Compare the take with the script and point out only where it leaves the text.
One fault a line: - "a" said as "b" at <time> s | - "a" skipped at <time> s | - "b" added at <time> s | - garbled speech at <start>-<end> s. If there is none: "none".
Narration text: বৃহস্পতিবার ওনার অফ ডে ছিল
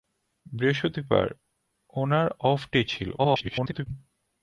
- garbled speech at 3.2-3.9 s